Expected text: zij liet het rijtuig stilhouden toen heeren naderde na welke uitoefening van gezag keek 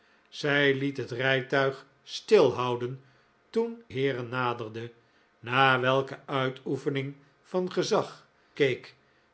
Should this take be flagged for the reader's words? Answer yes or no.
no